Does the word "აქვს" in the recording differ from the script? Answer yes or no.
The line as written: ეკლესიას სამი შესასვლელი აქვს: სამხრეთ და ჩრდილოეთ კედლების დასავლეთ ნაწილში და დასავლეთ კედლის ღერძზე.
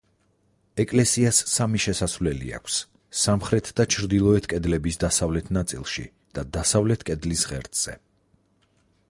no